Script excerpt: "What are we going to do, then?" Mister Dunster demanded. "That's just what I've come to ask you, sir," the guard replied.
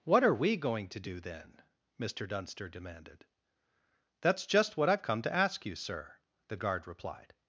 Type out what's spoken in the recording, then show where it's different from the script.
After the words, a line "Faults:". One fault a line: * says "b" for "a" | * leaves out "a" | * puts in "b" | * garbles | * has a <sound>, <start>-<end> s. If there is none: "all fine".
"What are we going to do, then?" Mister Dunster demanded. "That's just what I've come to ask you, sir," the guard replied.
Faults:
all fine